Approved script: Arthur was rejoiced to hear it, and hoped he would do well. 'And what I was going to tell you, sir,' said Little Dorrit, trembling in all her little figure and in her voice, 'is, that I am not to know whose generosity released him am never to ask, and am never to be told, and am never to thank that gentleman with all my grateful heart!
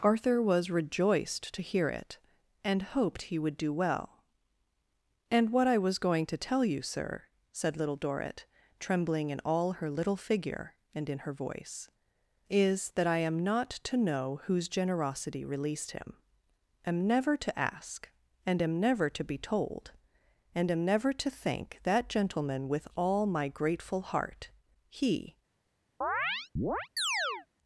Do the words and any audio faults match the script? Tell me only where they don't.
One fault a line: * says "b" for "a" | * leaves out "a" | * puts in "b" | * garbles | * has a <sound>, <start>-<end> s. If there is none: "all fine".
* puts in "He"
* has a chirp, 26.0-27.5 s